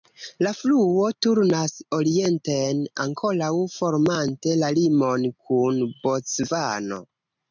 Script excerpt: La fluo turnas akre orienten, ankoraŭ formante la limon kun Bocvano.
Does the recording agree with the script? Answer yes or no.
no